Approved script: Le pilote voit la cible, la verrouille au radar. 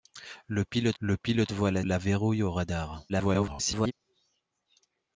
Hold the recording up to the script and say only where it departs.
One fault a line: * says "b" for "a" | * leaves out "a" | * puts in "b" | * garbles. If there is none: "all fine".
* puts in "le pilote"
* leaves out "cible"
* garbles